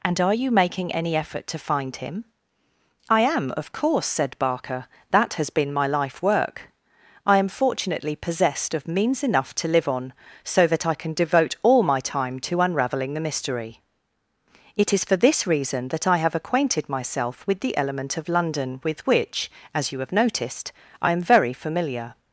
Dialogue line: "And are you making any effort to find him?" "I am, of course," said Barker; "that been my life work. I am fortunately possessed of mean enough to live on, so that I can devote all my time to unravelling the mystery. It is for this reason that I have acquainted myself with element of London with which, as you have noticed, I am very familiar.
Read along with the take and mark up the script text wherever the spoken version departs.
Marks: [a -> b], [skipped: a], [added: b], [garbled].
"And are you making any effort to find him?" "I am, of course," said Barker; "that [added: has] been my life work. I am fortunately possessed of [mean -> means] enough to live on, so that I can devote all my time to unravelling the mystery. It is for this reason that I have acquainted myself with [added: the] element of London with which, as you have noticed, I am very familiar.